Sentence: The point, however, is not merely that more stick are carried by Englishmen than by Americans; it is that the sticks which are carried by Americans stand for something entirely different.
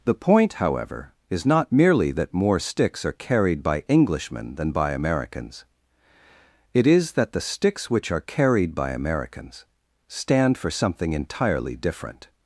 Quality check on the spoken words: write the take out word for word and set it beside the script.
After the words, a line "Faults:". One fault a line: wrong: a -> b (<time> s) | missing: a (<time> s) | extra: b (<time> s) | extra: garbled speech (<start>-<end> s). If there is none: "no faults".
The point, however, is not merely that more sticks are carried by Englishmen than by Americans; it is that the sticks which are carried by Americans stand for something entirely different.
Faults:
wrong: stick -> sticks (2.6 s)